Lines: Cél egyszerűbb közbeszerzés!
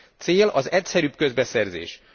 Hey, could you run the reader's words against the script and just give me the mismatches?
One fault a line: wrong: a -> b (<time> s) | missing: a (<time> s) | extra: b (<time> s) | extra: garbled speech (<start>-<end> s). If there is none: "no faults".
extra: az (0.5 s)